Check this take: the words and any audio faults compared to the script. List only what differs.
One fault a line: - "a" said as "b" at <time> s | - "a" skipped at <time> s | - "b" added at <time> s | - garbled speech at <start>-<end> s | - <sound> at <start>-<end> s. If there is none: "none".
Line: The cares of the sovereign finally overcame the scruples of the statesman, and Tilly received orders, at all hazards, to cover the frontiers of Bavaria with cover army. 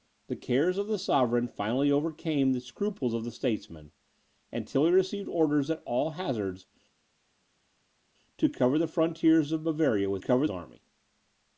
none